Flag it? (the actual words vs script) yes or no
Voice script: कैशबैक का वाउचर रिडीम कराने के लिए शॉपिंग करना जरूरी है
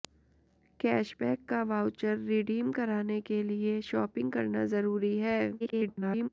yes